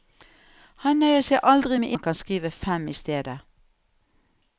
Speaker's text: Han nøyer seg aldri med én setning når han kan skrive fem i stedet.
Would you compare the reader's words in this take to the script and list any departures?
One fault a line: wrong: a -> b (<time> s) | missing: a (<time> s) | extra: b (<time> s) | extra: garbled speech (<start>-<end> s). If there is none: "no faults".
missing: én setning når (1.9 s)